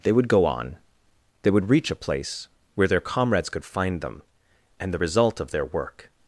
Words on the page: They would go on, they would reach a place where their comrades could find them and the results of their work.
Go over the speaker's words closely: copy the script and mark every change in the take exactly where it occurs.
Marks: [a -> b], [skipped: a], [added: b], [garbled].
They would go on, they would reach a place where their comrades could find them and the [results -> result] of their work.